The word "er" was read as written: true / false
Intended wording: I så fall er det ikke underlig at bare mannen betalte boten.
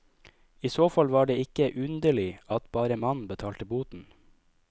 false